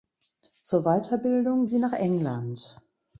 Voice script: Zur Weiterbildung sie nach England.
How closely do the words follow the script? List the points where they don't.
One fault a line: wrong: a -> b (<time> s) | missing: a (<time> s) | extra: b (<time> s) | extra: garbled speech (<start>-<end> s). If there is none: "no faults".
no faults